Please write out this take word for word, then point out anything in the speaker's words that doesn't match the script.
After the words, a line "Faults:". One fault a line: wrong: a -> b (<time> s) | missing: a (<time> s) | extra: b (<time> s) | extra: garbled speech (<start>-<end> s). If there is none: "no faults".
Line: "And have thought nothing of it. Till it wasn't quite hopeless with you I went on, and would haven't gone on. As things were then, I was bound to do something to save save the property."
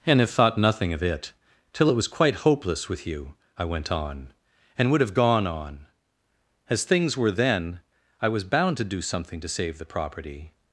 "And have thought nothing of it. Till it was quite hopeless with you I went on, and would have gone on. As things were then, I was bound to do something to save the property."
Faults:
wrong: wasn't -> was (1.9 s)
wrong: haven't -> have (5.0 s)
missing: save (9.8 s)